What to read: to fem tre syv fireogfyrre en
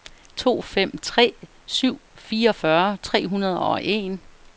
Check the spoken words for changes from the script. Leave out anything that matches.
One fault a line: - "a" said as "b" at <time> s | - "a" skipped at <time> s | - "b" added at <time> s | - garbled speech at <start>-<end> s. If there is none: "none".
- "tre hundrede og" added at 3.0 s